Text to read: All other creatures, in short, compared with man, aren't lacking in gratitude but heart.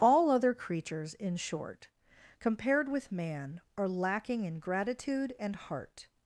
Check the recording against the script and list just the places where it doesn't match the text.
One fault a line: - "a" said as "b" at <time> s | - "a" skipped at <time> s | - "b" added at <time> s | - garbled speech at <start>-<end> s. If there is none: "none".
- "aren't" said as "are" at 3.8 s
- "but" said as "and" at 5.4 s